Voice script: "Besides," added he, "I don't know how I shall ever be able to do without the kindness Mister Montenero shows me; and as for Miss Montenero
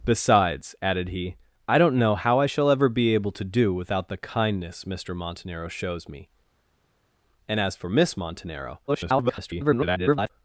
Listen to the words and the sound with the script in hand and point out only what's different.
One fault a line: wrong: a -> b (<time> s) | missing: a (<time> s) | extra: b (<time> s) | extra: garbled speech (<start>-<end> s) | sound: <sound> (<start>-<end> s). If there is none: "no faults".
extra: garbled speech (8.9-10.3 s)